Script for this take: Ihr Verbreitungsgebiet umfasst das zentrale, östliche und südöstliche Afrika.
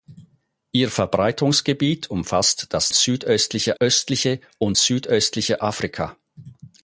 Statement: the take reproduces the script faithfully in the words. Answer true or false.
false